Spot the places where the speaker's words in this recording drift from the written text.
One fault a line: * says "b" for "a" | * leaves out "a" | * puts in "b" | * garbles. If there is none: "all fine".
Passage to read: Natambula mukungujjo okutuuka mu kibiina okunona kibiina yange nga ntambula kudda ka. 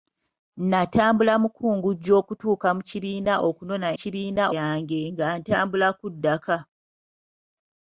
all fine